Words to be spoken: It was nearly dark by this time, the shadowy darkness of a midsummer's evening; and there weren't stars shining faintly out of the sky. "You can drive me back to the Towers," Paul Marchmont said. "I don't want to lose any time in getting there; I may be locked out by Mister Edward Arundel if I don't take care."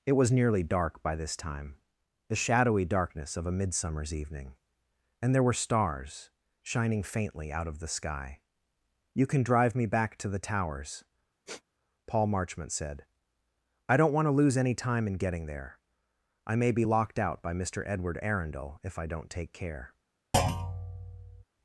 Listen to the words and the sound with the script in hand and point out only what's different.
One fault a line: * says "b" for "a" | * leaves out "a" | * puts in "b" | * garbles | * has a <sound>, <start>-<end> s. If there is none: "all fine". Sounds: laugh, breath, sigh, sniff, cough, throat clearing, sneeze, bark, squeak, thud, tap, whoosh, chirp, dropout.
* says "were" for "weren't"
* has a sniff, 11.5-11.6 s
* has a thud, 20.3-21.4 s